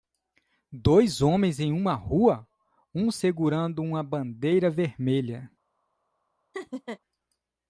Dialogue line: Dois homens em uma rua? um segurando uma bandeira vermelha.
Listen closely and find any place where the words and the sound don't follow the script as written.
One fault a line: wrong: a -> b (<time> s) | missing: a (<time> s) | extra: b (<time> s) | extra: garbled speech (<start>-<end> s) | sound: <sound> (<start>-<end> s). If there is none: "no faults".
sound: laugh (6.5-7.0 s)